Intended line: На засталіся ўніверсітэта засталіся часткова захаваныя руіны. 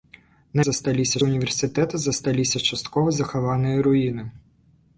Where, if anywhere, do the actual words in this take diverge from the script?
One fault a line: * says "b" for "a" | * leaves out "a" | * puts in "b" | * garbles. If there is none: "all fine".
all fine